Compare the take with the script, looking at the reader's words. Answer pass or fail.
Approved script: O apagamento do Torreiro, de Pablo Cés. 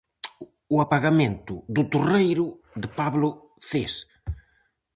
pass